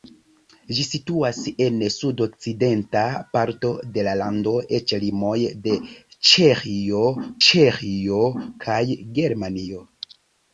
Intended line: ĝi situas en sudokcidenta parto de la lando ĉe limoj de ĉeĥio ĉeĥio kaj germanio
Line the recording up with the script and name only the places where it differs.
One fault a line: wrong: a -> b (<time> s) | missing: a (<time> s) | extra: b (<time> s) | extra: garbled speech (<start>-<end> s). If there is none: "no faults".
no faults